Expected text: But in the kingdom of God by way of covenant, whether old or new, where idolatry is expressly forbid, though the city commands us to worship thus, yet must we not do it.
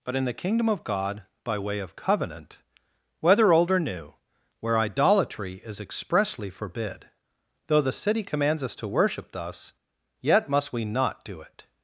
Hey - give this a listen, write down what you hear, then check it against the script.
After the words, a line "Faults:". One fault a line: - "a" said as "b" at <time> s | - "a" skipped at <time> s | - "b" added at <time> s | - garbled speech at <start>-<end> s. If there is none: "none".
But in the kingdom of God by way of covenant, whether old or new, where idolatry is expressly forbid, though the city commands us to worship thus, yet must we not do it.
Faults:
none